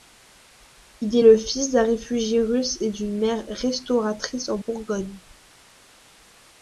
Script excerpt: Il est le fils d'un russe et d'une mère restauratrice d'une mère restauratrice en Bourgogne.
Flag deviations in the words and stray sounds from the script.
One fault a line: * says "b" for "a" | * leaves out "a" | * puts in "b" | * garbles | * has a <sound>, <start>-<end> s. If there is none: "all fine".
* puts in "réfugié"
* leaves out "d'une mère restauratrice"